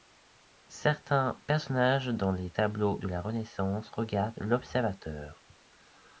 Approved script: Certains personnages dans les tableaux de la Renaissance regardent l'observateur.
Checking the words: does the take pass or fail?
pass